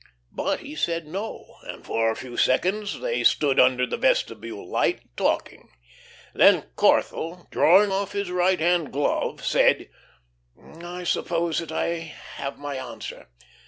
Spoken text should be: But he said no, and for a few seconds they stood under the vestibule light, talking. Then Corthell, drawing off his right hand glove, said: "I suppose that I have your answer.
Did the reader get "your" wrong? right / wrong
wrong